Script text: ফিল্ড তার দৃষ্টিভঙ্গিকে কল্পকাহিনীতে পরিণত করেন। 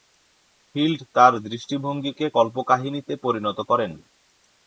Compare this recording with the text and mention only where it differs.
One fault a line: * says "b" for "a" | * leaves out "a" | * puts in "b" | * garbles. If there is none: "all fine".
all fine